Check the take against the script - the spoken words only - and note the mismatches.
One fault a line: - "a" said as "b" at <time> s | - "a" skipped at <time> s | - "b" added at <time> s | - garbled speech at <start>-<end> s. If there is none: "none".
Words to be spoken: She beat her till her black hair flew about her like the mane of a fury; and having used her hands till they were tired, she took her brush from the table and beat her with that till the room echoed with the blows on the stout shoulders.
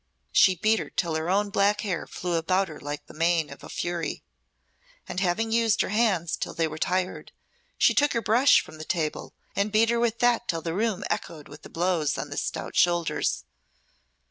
- "own" added at 1.3 s